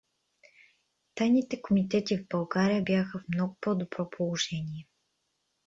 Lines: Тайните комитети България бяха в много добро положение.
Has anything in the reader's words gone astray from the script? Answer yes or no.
yes